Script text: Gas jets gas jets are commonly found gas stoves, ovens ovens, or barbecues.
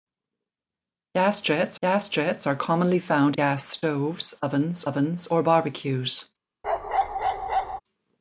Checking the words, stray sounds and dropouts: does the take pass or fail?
fail